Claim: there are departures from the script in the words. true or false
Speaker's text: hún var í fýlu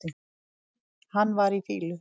true